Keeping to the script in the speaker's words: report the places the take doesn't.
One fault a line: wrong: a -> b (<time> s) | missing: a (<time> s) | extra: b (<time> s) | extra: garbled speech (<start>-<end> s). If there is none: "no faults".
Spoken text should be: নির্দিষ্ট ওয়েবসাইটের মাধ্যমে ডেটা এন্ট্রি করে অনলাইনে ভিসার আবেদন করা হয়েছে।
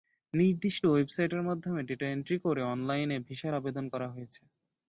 no faults